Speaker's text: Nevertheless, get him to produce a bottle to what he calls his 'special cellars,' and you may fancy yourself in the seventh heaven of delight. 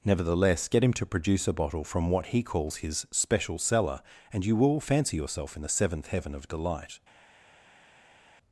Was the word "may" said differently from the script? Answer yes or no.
yes